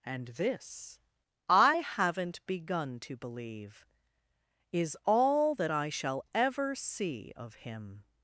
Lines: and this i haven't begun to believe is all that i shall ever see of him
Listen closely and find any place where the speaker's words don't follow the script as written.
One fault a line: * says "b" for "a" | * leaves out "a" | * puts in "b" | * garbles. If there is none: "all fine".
all fine